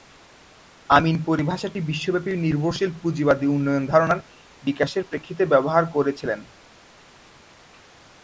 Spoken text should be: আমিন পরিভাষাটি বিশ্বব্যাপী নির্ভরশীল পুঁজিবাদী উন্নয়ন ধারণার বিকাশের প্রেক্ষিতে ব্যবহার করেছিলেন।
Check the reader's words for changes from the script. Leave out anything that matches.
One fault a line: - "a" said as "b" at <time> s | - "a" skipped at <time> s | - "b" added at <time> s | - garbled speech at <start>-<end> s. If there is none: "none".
none